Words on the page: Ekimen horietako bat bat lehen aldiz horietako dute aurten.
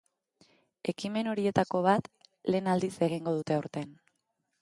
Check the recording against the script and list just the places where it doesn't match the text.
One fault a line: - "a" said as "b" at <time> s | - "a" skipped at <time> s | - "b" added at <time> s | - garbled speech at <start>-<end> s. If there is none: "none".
- "bat" skipped at 2.1 s
- "horietako" said as "egingo" at 3.1 s